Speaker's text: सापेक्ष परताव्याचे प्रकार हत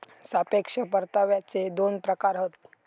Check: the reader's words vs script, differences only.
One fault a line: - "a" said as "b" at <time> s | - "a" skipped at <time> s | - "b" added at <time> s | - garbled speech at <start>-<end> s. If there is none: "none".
- "दोन" added at 1.7 s